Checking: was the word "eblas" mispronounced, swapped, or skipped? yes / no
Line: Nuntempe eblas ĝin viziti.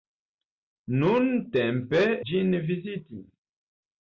yes